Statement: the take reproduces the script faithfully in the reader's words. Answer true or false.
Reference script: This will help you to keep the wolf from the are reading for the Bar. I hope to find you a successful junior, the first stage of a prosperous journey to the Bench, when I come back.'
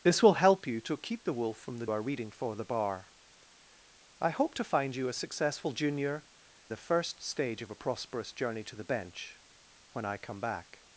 true